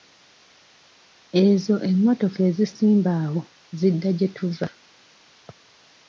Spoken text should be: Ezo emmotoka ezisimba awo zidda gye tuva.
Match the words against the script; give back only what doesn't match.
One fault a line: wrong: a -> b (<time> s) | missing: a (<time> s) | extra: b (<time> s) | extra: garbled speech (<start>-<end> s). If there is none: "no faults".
no faults